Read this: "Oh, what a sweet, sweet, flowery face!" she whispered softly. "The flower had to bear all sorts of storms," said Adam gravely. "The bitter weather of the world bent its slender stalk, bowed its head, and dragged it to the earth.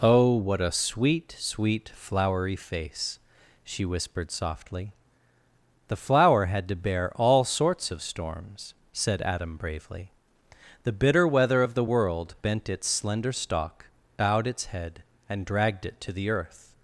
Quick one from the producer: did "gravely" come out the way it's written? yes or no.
no